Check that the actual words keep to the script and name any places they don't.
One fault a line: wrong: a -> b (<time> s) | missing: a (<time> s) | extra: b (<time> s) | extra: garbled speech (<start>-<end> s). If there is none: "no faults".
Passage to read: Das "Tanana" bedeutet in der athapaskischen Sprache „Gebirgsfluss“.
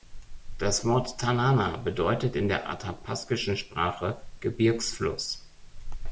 extra: Wort (0.8 s)